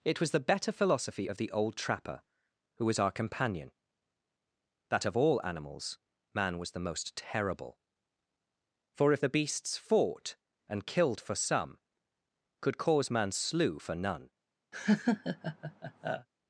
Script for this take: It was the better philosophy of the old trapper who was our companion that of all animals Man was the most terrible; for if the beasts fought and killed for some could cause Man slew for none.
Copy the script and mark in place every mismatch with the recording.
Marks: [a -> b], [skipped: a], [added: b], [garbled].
It was the better philosophy of the old trapper who was our companion that of all animals Man was the most terrible; for if the beasts fought and killed for some could cause Man slew for none.